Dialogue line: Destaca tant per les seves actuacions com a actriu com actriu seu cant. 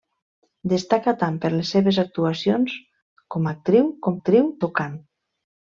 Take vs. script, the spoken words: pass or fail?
pass